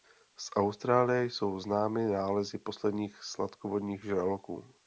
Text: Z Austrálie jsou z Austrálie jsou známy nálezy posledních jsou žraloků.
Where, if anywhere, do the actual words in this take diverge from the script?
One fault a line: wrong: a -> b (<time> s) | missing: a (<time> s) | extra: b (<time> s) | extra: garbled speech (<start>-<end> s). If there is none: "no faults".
missing: z Austrálie jsou (1.6 s)
wrong: jsou -> sladkovodních (3.2 s)